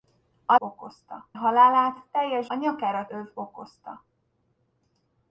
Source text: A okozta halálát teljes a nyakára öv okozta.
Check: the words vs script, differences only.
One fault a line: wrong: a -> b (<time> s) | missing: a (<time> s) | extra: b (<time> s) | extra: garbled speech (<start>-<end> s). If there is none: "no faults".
no faults